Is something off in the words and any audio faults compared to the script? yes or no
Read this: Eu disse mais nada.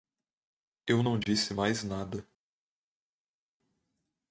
yes